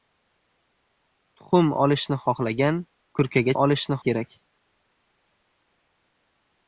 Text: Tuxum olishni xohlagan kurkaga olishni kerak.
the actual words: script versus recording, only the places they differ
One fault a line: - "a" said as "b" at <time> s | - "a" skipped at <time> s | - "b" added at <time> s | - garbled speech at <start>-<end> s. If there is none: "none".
none